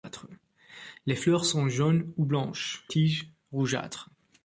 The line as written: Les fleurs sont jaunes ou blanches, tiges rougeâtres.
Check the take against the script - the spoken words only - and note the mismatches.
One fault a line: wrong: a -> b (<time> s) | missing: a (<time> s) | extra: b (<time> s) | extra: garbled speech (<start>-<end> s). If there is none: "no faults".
no faults